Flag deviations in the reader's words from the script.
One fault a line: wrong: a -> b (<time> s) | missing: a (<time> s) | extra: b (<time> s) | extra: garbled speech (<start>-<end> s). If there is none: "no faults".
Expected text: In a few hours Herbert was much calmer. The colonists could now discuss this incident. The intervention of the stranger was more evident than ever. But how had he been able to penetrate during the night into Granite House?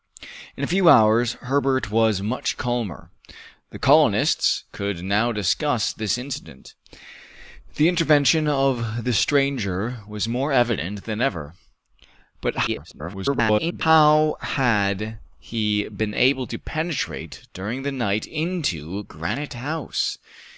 extra: garbled speech (12.7-13.8 s)